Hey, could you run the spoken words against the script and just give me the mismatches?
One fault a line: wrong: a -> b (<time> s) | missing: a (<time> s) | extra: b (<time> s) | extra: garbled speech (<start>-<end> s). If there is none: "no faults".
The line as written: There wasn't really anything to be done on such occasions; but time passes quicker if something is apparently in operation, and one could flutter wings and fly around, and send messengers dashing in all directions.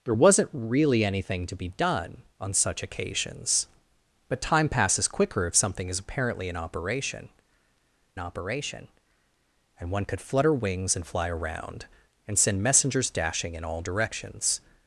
extra: operation (8.2 s)